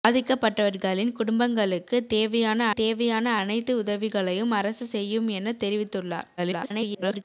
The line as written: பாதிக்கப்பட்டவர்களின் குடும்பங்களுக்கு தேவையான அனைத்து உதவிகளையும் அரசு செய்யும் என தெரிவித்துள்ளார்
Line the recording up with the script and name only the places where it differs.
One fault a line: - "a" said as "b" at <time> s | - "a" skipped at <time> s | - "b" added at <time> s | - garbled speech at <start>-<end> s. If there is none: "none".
- "தேவையான" added at 2.7 s
- garbled speech at 6.4-7.2 s